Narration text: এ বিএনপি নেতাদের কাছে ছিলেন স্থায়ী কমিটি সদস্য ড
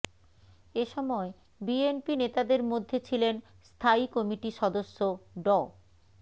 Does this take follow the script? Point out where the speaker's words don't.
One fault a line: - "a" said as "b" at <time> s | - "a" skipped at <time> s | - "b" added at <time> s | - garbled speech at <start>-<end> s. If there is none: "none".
- "সময়" added at 0.9 s
- "কাছে" said as "মধ্যে" at 2.7 s